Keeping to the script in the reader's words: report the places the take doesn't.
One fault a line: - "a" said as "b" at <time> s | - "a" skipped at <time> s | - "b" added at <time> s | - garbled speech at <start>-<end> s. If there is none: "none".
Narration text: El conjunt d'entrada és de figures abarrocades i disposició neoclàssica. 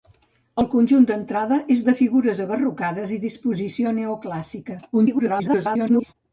- garbled speech at 4.9-6.1 s